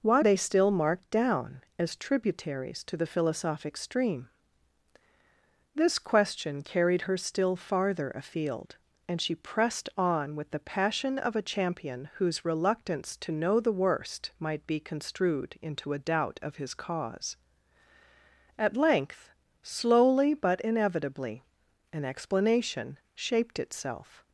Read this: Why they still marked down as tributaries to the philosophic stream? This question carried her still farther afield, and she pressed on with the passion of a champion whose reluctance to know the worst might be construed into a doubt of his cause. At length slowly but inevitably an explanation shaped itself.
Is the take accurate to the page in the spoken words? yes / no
yes